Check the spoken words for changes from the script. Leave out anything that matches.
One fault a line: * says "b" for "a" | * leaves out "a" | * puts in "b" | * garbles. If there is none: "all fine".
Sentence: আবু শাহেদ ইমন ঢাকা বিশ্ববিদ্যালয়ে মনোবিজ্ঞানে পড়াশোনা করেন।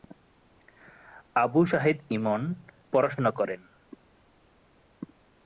* leaves out "ঢাকা বিশ্ববিদ্যালয়ে মনোবিজ্ঞানে"